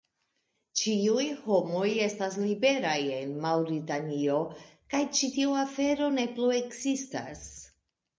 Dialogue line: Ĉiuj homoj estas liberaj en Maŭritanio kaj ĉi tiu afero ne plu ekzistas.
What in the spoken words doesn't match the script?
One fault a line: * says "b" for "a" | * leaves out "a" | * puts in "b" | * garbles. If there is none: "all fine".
all fine